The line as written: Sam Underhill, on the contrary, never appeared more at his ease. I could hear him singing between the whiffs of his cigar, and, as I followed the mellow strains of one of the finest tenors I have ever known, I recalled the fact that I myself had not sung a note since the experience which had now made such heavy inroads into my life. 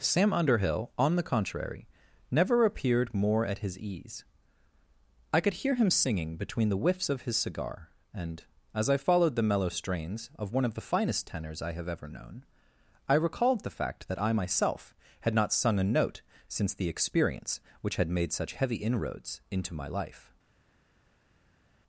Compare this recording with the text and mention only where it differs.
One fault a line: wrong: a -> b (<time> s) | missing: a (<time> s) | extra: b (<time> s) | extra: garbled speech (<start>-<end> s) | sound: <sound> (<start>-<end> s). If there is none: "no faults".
missing: now (18.1 s)